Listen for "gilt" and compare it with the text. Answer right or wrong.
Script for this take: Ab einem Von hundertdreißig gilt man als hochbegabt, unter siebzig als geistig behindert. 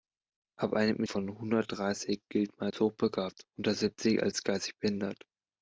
right